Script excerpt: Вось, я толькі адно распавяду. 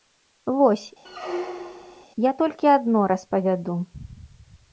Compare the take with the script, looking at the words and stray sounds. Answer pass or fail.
fail